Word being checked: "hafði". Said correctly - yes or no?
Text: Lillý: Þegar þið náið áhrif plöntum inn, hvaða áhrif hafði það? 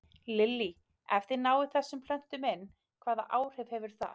no